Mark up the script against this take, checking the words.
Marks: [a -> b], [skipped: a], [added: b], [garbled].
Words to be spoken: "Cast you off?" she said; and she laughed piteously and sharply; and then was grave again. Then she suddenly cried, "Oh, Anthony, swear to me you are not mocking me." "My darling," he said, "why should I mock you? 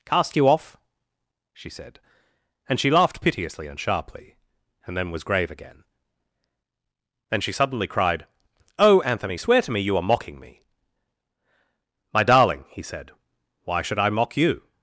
"Cast you off?" she said; and she laughed piteously and sharply; and then was grave again. Then she suddenly cried, "Oh, Anthony, swear to me you are [skipped: not] mocking me." "My darling," he said, "why should I mock you?